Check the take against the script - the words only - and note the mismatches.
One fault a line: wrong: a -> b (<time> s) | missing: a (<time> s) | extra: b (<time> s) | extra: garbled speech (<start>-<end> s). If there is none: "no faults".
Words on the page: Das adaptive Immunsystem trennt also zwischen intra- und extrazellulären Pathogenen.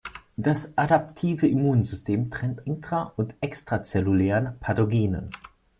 missing: also zwischen (2.7 s)